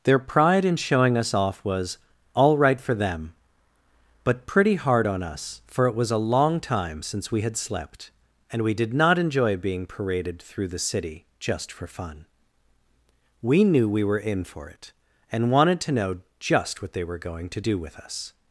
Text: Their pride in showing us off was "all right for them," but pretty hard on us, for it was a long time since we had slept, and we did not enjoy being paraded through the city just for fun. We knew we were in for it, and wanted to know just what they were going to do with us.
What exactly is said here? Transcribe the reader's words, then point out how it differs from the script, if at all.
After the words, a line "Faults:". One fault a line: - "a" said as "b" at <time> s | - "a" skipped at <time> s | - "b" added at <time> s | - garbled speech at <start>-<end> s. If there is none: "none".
Their pride in showing us off was "all right for them," but pretty hard on us, for it was a long time since we had slept, and we did not enjoy being paraded through the city just for fun. We knew we were in for it, and wanted to know just what they were going to do with us.
Faults:
none